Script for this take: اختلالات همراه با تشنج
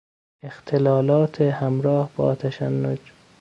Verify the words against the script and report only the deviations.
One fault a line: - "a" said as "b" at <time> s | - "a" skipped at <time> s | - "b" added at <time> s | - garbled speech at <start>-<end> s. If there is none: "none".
none